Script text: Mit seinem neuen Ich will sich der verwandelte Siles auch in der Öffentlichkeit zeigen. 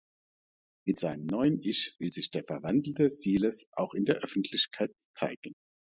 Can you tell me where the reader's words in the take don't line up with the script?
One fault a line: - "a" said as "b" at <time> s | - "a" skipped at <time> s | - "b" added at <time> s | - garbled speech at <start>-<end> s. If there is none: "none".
none